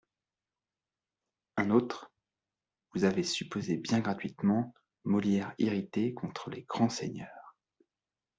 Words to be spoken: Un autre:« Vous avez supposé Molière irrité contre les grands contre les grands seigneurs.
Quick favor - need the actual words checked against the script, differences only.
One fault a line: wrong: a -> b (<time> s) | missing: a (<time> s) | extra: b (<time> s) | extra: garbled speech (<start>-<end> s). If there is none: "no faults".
extra: bien gratuitement (3.7 s)
missing: contre les grands (6.9 s)